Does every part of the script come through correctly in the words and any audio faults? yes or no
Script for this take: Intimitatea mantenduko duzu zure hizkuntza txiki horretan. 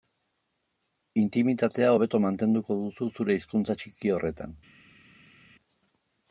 no